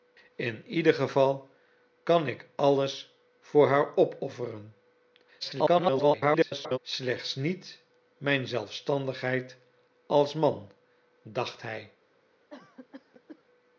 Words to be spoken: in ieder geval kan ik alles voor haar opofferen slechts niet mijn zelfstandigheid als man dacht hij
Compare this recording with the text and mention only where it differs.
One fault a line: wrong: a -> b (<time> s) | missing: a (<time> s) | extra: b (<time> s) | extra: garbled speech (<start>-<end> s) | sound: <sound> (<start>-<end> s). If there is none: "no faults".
extra: garbled speech (5.4-6.8 s)
sound: cough (12.5-13.4 s)